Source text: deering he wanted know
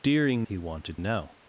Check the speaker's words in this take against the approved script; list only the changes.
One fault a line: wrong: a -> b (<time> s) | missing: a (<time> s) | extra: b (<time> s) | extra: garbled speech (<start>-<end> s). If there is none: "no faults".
no faults